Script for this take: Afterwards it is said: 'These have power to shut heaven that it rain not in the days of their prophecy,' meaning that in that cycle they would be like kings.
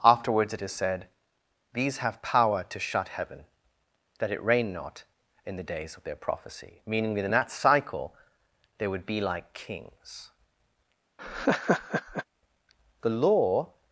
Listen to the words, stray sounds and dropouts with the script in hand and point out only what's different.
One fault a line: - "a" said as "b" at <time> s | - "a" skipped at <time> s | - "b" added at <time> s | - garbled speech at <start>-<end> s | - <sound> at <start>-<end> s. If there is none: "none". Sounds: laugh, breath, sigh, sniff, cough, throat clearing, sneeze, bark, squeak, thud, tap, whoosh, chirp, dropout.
- laugh at 11.2-12.2 s
- "The Law" added at 13.0 s